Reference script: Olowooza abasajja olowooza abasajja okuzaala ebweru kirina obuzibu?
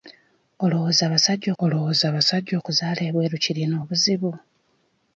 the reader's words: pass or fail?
pass